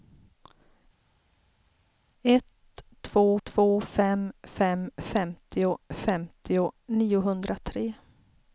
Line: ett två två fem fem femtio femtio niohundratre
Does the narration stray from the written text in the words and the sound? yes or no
no